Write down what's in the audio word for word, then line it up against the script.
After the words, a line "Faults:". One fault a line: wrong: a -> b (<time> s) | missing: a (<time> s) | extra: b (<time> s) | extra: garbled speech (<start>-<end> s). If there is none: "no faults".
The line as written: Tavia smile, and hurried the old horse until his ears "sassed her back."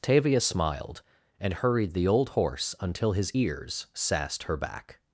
Tavia smiled, and hurried the old horse until his ears "sassed her back."
Faults:
wrong: smile -> smiled (0.4 s)